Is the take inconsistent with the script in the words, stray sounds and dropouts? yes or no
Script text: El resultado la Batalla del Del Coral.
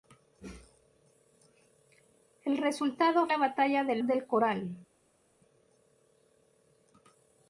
no